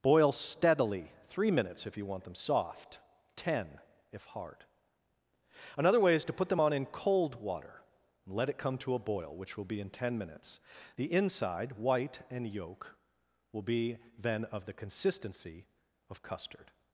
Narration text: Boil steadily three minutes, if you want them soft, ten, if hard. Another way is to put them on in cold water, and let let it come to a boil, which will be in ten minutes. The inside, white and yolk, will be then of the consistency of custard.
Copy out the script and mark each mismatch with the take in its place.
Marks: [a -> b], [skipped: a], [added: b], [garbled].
Boil steadily three minutes, if you want them soft, ten, if hard. Another way is to put them on in cold water, and let [skipped: let] it come to a boil, which will be in ten minutes. The inside, white and yolk, will be then of the consistency of custard.